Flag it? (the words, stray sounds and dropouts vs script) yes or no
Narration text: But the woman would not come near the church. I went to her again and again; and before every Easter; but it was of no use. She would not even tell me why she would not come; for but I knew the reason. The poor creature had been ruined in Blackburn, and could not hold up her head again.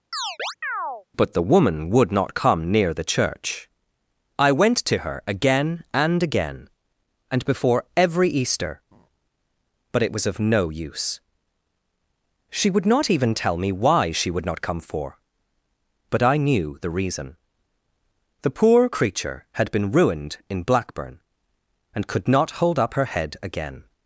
yes